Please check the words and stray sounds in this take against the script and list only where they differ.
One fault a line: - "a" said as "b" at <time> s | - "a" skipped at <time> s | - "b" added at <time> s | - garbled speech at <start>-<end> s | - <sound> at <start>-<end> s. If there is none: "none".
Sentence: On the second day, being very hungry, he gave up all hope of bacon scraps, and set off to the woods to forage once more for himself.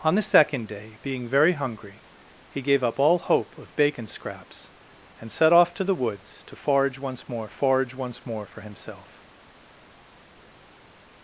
- "forage once more" added at 7.5 s